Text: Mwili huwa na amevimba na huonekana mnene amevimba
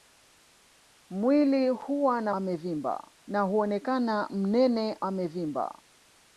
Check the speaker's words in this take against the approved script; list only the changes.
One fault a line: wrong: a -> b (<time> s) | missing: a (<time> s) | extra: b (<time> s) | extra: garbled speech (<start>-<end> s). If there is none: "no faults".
no faults